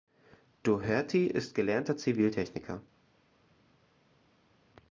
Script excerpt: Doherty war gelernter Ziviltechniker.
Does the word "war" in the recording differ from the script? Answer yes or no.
yes